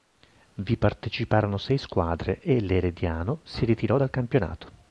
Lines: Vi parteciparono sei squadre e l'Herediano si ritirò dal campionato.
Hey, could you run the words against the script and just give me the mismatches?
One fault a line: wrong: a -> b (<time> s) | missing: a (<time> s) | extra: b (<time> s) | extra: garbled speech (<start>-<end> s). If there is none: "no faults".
no faults